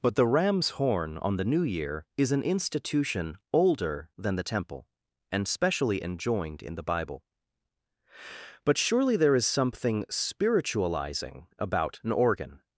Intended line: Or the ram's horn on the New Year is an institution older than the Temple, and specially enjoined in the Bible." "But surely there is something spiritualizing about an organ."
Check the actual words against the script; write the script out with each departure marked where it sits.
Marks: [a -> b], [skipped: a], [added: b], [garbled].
[Or -> But] the ram's horn on the New Year is an institution older than the Temple, and specially enjoined in the Bible." "But surely there is something spiritualizing about an organ."